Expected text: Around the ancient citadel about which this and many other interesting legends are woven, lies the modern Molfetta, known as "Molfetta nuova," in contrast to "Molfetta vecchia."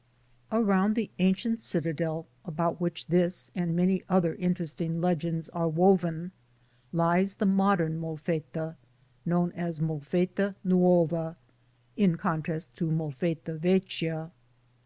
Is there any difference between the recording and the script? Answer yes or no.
no